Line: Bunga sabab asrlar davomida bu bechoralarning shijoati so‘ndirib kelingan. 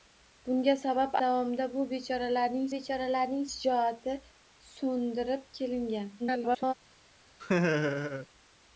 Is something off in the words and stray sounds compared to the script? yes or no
yes